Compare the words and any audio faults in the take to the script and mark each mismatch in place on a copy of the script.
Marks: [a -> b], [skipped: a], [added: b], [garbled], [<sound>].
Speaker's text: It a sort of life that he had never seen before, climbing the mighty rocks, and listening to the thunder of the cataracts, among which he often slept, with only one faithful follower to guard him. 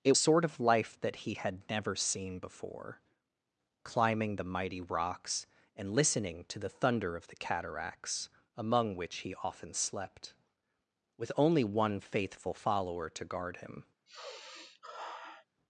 It a sort of life that he had never seen before, climbing the mighty rocks, and listening to the thunder of the cataracts, among which he often slept, with only one faithful follower to guard him. [sigh]